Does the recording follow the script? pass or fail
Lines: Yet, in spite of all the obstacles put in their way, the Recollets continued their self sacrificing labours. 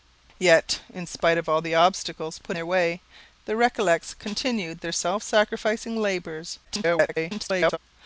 fail